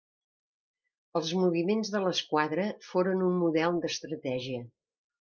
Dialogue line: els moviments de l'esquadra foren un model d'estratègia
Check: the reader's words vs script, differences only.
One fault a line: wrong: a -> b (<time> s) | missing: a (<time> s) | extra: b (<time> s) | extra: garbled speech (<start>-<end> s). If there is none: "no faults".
no faults